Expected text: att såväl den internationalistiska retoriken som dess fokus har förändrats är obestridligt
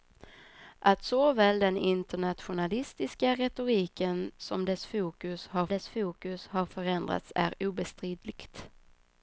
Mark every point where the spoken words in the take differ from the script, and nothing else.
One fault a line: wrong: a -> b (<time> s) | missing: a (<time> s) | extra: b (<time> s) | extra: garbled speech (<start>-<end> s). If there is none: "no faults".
extra: dess fokus har (5.7 s)